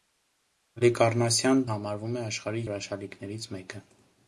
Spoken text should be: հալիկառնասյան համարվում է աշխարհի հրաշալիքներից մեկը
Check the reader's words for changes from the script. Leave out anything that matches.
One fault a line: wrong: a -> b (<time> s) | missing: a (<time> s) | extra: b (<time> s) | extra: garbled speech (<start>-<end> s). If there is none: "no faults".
no faults